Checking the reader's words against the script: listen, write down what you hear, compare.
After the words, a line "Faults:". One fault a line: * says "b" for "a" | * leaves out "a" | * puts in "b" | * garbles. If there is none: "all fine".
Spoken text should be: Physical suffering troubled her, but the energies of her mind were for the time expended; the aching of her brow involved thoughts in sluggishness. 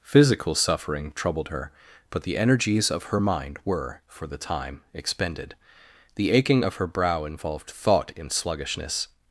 Physical suffering troubled her, but the energies of her mind were for the time expended; the aching of her brow involved thought in sluggishness.
Faults:
* says "thought" for "thoughts"